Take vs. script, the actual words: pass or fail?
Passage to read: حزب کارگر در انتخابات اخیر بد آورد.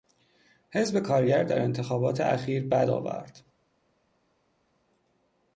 pass